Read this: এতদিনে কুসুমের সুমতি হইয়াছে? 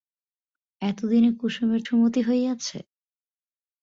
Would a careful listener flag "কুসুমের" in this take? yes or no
no